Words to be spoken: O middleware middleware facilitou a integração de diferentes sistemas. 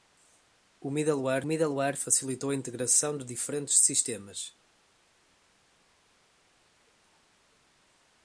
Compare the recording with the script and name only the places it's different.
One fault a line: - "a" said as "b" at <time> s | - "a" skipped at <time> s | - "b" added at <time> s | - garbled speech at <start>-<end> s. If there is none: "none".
none